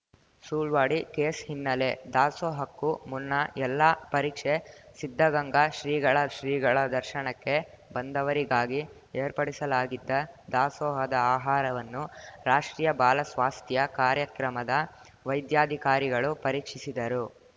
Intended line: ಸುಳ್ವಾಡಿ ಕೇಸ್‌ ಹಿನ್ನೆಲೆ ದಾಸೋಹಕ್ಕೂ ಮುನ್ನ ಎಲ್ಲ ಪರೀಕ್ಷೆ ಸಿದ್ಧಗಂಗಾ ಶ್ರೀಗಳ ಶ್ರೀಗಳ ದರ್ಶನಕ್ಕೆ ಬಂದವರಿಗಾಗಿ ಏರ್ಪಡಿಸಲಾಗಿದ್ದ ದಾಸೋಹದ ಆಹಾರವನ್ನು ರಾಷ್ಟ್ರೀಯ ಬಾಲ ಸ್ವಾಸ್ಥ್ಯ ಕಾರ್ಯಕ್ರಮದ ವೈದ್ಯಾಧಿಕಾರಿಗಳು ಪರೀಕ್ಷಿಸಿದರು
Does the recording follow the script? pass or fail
pass